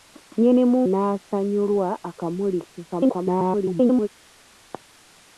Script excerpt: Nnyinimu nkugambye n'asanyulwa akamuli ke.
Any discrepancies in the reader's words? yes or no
yes